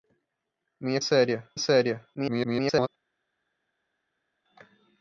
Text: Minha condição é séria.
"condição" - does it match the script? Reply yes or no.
no